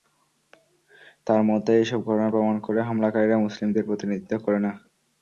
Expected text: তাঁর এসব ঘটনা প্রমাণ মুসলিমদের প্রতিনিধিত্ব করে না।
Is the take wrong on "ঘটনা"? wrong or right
right